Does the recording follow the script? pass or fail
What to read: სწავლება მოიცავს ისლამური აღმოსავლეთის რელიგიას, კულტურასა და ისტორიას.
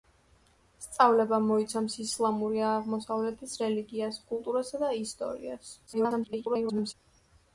fail